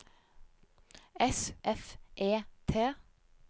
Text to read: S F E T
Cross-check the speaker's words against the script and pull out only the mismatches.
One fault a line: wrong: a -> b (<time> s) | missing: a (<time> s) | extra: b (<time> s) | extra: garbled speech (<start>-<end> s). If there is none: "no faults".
no faults